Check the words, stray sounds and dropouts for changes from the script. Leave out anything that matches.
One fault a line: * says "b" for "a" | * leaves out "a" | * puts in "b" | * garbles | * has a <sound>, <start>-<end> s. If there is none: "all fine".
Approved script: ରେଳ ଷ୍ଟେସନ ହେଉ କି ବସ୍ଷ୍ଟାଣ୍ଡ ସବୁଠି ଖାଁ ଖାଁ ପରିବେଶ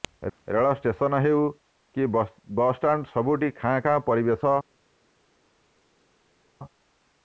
all fine